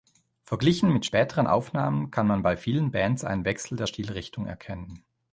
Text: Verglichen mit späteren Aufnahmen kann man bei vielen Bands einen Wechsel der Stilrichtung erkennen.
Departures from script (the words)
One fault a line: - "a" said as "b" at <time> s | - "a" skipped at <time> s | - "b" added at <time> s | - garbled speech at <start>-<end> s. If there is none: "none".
none